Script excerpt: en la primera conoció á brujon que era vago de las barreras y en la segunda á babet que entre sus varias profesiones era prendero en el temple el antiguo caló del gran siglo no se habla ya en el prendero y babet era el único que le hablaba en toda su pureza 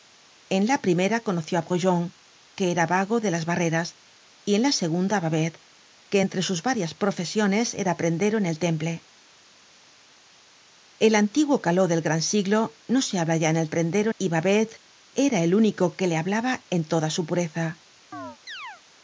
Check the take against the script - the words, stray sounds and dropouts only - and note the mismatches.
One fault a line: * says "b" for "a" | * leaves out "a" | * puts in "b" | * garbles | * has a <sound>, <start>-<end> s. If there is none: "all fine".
* has a chirp, 18.1-18.8 s